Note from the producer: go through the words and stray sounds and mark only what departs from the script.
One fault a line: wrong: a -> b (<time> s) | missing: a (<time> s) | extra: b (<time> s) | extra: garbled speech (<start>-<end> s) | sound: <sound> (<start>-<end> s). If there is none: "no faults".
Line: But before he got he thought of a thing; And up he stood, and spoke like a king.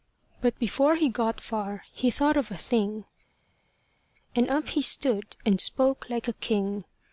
extra: far (1.4 s)